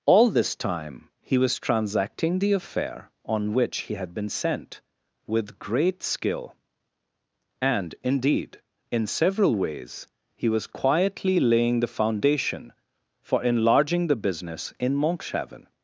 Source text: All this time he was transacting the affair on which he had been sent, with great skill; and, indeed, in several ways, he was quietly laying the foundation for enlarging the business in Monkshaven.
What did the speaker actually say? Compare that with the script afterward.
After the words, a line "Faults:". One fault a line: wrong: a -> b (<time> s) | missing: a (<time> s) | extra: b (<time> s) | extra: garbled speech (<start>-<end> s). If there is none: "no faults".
All this time he was transacting the affair on which he had been sent, with great skill; and, indeed, in several ways, he was quietly laying the foundation for enlarging the business in Monkshaven.
Faults:
no faults